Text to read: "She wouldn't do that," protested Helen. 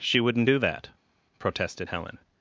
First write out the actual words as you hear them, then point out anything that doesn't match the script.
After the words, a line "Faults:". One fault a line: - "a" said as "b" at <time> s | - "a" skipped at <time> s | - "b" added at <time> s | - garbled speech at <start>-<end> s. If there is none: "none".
"She wouldn't do that," protested Helen.
Faults:
none